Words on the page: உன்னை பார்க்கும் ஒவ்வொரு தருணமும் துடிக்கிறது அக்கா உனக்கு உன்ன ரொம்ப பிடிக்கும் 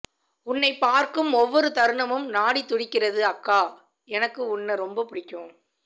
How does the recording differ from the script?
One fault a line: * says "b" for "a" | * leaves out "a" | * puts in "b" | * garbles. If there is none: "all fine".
* puts in "நாடி"
* says "எனக்கு" for "உனக்கு"